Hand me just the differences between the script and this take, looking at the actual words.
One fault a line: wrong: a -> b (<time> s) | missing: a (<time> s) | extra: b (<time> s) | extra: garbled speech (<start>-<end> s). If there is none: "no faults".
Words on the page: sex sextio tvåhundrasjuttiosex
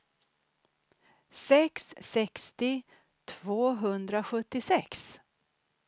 no faults